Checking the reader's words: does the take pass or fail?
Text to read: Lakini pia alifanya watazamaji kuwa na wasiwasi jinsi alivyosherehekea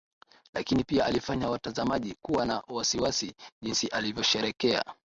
pass